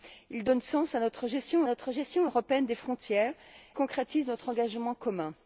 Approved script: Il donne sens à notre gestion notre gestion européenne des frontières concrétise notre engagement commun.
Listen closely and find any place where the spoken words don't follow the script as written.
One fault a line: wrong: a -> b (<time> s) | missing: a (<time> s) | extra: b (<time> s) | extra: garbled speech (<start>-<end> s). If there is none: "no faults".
no faults